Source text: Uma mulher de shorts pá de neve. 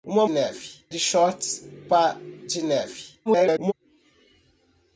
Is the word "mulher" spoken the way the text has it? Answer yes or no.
no